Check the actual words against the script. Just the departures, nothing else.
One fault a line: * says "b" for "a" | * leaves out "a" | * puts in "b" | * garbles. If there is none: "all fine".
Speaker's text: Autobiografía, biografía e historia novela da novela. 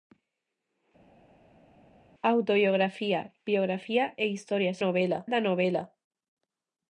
all fine